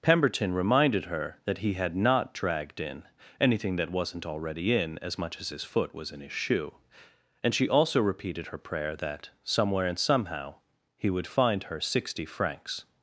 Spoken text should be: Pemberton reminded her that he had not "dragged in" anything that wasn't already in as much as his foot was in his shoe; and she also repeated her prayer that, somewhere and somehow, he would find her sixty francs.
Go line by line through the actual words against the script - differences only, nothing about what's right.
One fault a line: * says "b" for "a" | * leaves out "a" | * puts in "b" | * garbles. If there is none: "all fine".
all fine